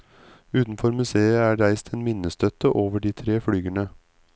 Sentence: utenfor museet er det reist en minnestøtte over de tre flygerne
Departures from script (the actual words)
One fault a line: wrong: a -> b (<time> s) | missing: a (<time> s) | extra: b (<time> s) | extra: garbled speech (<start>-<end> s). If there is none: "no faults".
missing: det (1.6 s)